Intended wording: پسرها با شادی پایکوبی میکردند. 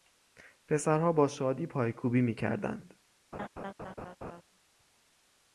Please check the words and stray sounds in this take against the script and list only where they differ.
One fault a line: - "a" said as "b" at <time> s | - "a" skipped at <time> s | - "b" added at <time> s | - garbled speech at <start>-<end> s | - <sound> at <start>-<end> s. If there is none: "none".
- laugh at 3.3-4.4 s